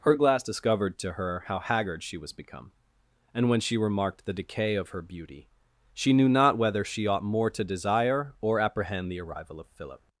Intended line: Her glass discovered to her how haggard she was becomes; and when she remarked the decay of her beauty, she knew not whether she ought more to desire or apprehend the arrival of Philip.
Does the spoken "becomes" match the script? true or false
false